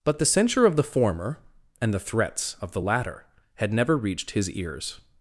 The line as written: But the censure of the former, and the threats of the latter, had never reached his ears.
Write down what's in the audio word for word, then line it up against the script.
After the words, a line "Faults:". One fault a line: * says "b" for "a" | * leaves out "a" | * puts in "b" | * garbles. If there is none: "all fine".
But the censure of the former, and the threats of the latter, had never reached his ears.
Faults:
all fine